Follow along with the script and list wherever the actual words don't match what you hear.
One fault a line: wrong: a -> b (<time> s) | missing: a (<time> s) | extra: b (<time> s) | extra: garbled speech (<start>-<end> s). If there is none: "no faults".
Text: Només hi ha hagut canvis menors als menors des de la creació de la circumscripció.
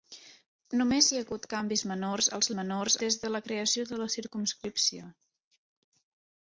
no faults